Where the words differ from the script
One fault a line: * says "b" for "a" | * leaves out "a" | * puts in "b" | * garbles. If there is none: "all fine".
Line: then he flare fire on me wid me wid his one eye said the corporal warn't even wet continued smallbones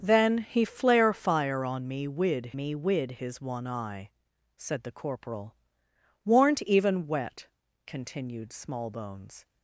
all fine